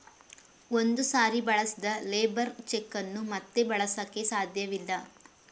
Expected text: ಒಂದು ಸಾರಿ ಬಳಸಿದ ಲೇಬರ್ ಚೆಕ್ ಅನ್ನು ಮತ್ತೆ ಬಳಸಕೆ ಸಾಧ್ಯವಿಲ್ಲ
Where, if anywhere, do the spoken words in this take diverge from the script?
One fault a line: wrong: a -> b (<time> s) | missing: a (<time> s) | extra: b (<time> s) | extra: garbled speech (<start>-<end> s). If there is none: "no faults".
no faults